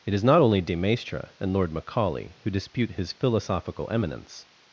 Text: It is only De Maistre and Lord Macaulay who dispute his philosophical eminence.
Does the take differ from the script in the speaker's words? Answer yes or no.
yes